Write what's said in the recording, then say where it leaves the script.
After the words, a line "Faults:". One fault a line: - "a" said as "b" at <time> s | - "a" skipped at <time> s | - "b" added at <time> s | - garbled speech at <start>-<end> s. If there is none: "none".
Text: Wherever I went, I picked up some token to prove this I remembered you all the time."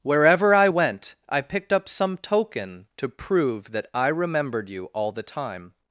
Wherever I went, I picked up some token to prove that I remembered you all the time."
Faults:
- "this" said as "that" at 3.7 s